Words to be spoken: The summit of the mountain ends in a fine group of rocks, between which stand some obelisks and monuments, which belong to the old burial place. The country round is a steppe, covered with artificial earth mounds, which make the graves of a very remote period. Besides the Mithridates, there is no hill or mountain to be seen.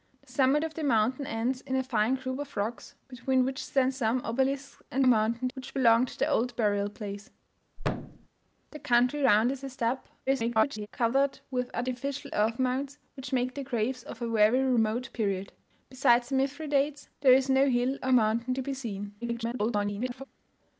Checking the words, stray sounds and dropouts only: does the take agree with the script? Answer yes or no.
no